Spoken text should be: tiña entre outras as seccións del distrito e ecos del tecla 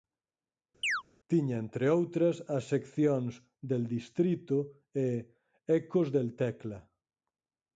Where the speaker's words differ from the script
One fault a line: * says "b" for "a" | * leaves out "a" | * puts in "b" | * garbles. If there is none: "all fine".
all fine